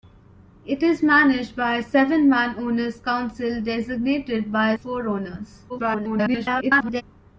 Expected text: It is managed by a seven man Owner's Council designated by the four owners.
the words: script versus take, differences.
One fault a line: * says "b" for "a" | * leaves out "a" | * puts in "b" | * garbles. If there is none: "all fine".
* leaves out "the"
* garbles